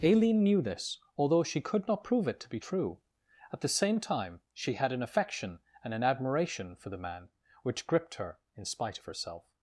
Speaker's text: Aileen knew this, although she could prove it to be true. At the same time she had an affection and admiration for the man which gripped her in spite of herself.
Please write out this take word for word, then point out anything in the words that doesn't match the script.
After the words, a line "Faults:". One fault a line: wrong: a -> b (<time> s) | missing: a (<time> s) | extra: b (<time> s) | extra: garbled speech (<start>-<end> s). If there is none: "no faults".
Aileen knew this, although she could not prove it to be true. At the same time she had an affection and an admiration for the man which gripped her in spite of herself.
Faults:
extra: not (1.9 s)
extra: an (5.9 s)